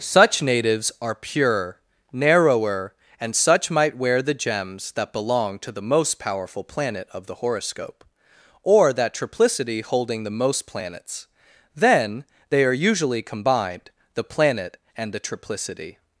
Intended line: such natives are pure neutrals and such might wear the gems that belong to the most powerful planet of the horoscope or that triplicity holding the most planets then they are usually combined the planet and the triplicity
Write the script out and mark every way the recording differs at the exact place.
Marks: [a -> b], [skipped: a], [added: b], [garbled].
such natives are pure [neutrals -> narrower] and such might wear the gems that belong to the most powerful planet of the horoscope or that triplicity holding the most planets then they are usually combined the planet and the triplicity